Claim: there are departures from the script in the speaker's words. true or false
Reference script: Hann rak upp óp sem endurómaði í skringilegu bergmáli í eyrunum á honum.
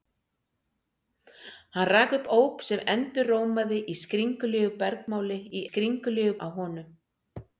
true